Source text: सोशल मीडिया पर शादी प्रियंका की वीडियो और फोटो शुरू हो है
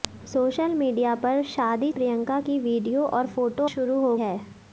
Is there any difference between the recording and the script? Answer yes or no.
no